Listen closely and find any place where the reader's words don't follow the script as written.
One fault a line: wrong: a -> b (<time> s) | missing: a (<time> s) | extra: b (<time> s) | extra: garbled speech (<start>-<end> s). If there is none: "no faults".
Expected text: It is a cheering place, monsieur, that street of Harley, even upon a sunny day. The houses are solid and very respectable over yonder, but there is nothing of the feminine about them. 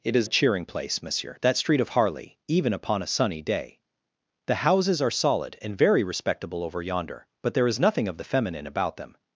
no faults